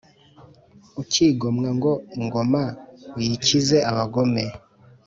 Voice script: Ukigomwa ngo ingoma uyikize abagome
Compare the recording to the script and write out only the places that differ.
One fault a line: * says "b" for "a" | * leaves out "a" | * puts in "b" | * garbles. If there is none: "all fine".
all fine